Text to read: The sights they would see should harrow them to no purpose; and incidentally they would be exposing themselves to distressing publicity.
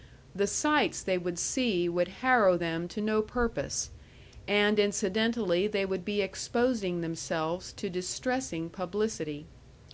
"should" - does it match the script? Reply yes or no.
no